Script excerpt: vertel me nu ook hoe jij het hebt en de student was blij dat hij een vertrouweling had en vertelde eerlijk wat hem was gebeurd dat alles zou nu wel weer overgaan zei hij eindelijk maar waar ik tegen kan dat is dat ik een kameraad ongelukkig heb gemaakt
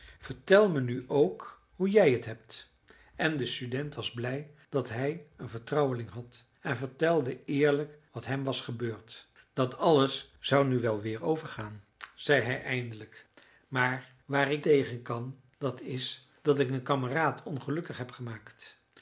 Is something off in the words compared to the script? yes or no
no